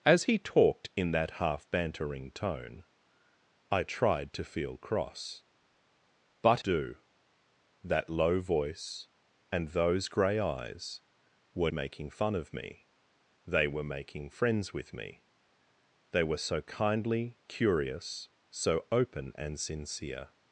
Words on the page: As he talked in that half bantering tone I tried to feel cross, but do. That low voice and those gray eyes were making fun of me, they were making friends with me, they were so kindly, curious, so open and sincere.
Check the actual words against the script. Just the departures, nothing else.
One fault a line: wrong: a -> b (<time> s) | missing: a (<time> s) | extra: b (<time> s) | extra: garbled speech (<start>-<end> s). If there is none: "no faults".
no faults